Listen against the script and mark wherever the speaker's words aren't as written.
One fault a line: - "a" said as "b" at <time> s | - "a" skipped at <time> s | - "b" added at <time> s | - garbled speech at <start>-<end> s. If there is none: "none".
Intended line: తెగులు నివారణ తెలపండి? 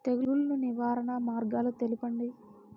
- "మార్గాలు" added at 1.2 s